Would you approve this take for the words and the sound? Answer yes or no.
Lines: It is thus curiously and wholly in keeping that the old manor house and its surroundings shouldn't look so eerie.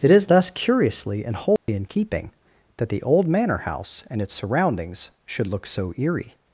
no